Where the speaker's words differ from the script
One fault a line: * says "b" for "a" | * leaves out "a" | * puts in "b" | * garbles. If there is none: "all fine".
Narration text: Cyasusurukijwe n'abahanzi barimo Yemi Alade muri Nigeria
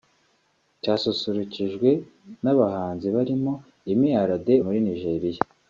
all fine